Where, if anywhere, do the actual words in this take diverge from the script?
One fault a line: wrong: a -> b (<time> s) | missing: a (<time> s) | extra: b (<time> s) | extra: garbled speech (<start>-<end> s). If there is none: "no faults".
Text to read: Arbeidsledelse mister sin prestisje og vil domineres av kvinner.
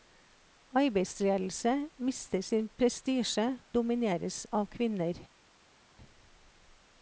missing: og vil (3.6 s)